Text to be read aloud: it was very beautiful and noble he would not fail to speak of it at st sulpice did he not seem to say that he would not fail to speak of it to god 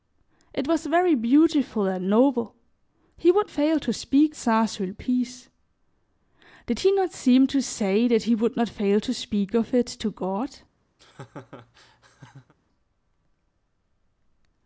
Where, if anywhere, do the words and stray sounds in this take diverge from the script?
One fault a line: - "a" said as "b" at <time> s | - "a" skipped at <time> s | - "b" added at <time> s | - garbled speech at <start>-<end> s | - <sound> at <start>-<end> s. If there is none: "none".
- "not" skipped at 3.5 s
- "of it at" skipped at 4.4 s
- laugh at 11.0-12.5 s